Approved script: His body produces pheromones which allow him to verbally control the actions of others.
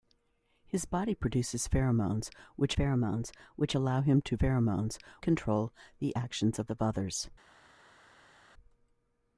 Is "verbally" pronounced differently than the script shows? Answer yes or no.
yes